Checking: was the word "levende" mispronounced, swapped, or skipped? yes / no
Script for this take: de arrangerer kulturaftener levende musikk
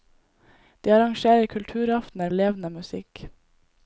no